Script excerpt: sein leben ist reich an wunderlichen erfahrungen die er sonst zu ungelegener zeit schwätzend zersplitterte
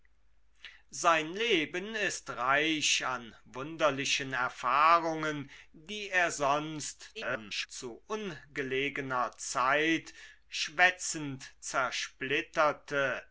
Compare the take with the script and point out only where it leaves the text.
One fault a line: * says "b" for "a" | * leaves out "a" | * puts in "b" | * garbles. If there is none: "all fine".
* garbles